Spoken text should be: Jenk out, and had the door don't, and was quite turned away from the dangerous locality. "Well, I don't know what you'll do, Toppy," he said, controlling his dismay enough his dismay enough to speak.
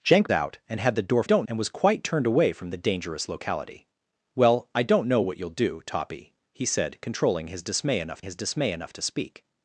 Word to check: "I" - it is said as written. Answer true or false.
true